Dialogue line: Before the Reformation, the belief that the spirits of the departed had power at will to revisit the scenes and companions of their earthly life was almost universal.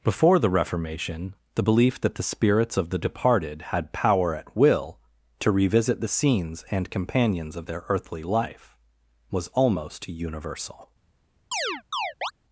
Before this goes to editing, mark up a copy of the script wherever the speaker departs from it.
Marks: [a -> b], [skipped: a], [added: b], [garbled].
Before the Reformation, the belief that the spirits of the departed had power at will to revisit the scenes and companions of their earthly life was almost universal.